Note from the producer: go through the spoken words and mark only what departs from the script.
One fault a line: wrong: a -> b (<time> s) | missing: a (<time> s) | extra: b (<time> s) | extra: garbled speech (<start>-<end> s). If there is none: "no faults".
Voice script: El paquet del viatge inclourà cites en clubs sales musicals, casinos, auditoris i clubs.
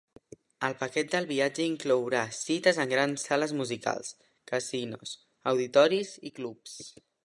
wrong: clubs -> grans (2.9 s)